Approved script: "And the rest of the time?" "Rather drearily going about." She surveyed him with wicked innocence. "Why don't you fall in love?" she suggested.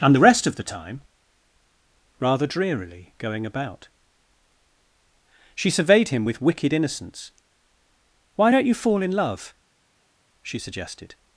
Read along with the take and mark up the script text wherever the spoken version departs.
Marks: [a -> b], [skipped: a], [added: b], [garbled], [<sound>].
"And the rest of the time?" "Rather drearily going about." She surveyed him with wicked innocence. "Why don't you fall in love?" she suggested.